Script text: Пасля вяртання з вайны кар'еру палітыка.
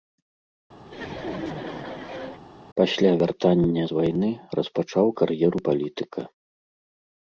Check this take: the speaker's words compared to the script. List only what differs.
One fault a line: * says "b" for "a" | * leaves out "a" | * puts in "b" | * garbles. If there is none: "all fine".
* puts in "распачаў"